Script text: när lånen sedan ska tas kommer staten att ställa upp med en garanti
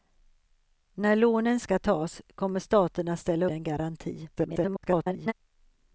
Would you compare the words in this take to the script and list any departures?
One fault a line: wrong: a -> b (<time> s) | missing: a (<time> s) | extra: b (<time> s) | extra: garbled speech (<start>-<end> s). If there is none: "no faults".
missing: sedan (1.6 s)
missing: upp med (3.5 s)
extra: garbled speech (4.4-5.3 s)